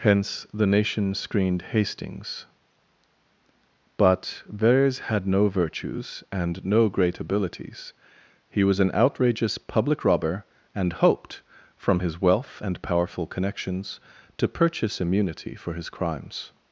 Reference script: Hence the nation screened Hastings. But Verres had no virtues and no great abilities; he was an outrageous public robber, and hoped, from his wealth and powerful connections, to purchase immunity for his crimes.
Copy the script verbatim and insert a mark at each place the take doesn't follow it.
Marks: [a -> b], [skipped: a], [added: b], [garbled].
Hence the nation screened Hastings. But Verres had no virtues and no great abilities; he was an outrageous public robber, and hoped, from his wealth and powerful connections, to purchase immunity for his crimes.